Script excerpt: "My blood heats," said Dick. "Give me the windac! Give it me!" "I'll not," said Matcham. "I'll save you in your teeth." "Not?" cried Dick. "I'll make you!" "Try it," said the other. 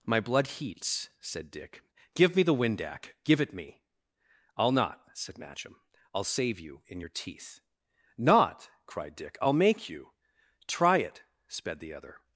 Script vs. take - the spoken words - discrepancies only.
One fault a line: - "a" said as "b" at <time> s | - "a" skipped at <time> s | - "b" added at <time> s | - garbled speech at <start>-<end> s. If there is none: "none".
- "said" said as "sped" at 11.5 s